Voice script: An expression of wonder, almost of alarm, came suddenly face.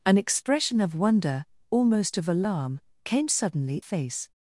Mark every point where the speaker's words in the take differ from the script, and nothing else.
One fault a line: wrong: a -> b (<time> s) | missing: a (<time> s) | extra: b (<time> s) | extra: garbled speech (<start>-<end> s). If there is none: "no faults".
no faults